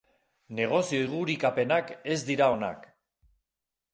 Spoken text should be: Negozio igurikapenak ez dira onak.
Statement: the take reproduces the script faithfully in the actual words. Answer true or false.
true